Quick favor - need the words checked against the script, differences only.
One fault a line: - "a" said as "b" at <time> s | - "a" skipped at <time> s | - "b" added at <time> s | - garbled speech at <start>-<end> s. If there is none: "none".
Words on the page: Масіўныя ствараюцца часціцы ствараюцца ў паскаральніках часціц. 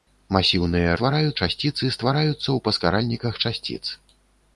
none